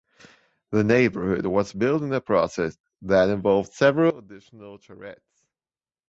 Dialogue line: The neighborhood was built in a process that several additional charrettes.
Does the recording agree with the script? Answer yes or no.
no